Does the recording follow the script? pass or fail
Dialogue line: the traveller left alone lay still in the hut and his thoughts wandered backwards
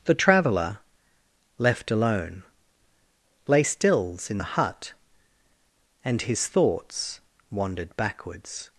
fail